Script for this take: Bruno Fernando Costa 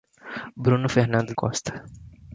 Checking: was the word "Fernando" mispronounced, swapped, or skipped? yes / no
no